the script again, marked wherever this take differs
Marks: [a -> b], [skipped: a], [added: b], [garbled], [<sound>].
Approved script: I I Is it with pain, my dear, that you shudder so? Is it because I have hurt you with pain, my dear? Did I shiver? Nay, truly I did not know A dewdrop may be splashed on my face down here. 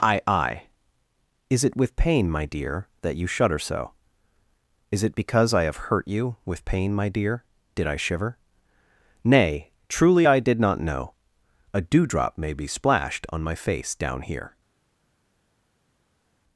I I Is it with pain, my dear, that you shudder so? Is it because I have hurt you with pain, my dear? Did I shiver? Nay, truly I did not know A dewdrop may be splashed on my face down here.